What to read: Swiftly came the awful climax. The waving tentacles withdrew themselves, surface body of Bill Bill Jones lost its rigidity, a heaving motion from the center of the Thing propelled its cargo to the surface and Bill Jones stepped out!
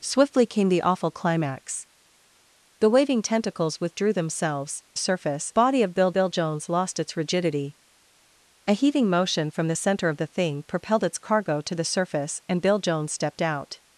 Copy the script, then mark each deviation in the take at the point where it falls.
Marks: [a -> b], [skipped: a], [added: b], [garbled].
Swiftly came the awful climax. The waving tentacles withdrew themselves, surface body of Bill Bill Jones lost its rigidity, a heaving motion from the center of the Thing propelled its cargo to the surface and Bill Jones stepped out!